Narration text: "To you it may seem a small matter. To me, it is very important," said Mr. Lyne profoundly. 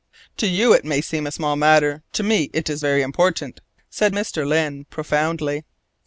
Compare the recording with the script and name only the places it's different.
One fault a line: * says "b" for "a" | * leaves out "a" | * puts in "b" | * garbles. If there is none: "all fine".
all fine